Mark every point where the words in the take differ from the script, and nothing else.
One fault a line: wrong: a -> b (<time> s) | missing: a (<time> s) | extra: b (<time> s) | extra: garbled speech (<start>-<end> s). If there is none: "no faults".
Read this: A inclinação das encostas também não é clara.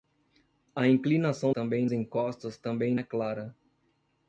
wrong: das -> também (1.5 s)
missing: não (2.9 s)